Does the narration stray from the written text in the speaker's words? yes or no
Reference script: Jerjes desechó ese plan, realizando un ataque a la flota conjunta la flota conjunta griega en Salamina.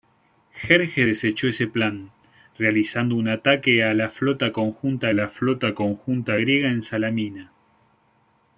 no